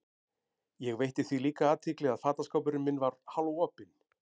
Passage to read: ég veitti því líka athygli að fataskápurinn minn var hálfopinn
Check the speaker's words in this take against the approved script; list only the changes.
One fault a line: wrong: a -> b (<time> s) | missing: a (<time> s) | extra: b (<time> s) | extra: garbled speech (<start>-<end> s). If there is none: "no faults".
no faults